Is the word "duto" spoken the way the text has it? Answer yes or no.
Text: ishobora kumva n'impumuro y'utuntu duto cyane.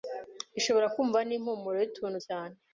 no